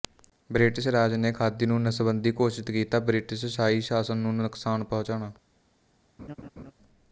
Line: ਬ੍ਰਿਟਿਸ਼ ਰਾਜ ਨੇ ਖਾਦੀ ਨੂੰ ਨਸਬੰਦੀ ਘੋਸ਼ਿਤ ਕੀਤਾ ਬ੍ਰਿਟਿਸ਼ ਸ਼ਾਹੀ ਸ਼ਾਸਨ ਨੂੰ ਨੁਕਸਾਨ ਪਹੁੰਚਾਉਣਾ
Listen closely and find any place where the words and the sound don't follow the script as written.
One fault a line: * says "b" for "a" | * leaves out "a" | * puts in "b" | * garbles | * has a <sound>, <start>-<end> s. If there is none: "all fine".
* has a laugh, 6.2-6.7 s